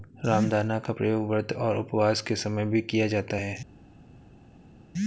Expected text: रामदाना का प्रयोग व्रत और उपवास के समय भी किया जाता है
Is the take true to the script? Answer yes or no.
yes